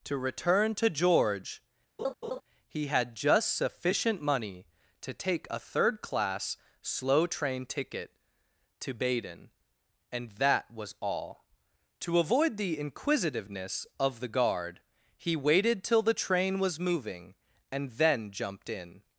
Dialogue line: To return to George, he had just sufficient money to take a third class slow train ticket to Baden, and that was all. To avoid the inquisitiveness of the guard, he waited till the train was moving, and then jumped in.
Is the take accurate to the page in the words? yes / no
yes